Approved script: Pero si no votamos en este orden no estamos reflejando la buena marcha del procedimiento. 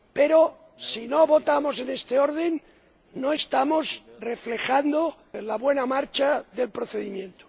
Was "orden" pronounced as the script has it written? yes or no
yes